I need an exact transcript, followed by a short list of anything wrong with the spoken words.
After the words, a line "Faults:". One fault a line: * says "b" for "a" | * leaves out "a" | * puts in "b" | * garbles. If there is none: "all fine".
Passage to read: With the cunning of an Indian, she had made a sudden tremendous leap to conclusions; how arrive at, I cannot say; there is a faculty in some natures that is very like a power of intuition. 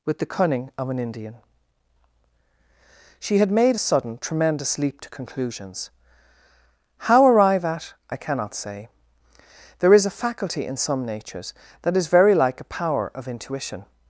With the cunning of an Indian, she had made a sudden tremendous leap to conclusions; how arrive at, I cannot say; there is a faculty in some natures that is very like a power of intuition.
Faults:
all fine